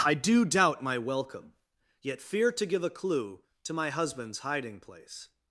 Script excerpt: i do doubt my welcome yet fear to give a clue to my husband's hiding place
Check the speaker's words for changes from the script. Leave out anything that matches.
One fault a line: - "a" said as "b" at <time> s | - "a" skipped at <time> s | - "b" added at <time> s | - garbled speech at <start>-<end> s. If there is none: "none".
none